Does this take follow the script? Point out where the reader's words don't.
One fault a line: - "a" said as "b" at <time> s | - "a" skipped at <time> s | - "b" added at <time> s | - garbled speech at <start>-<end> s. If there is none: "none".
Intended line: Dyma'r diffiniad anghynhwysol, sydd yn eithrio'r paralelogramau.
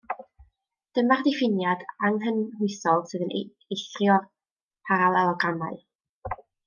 none